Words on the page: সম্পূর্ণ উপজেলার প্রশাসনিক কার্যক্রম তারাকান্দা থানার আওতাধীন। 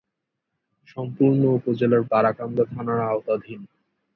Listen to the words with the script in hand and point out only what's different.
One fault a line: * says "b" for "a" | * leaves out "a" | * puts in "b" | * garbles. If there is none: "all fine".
* leaves out "প্রশাসনিক কার্যক্রম"